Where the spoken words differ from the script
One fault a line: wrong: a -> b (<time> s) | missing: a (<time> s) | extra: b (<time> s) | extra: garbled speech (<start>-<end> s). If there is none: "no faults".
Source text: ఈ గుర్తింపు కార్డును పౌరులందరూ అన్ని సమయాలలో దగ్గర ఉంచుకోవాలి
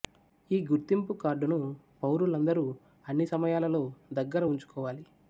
no faults